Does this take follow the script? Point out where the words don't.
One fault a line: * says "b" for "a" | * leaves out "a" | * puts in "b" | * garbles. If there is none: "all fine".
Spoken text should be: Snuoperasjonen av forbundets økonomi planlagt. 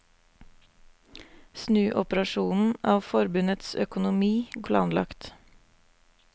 all fine